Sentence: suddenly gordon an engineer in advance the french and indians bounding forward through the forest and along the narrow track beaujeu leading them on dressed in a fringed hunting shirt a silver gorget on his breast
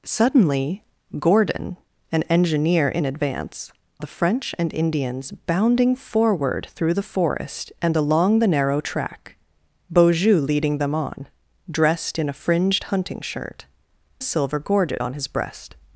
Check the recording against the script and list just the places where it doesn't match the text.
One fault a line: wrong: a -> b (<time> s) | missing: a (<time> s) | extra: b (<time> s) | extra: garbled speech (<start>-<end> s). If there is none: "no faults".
no faults